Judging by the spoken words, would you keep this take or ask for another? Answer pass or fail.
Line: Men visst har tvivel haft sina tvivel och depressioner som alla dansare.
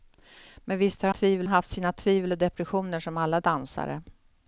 pass